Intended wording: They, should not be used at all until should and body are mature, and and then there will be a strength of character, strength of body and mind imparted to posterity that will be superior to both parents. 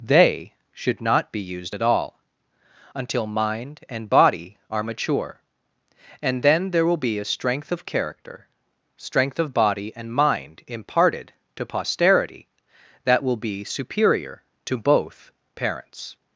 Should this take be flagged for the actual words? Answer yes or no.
yes